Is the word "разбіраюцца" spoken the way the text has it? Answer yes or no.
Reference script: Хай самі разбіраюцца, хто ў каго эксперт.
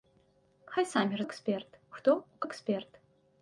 no